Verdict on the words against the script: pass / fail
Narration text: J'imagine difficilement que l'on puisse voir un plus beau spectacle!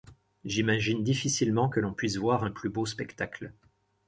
pass